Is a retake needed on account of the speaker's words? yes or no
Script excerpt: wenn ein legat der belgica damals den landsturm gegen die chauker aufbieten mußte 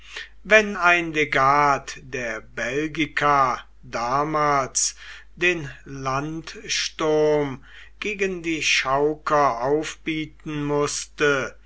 no